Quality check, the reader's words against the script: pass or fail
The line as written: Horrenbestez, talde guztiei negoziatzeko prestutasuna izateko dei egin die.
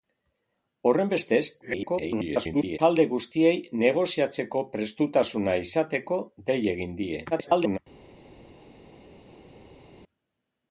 fail